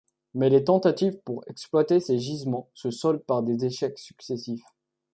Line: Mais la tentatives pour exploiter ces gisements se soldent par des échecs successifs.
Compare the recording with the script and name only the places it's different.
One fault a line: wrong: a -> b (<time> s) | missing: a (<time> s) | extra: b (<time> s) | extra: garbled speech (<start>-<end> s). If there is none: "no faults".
wrong: la -> les (0.5 s)